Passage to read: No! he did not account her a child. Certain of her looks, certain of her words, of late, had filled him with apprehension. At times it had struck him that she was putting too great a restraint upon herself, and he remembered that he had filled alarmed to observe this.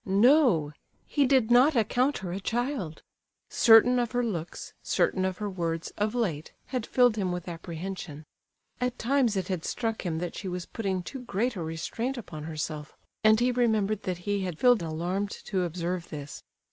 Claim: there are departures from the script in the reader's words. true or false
false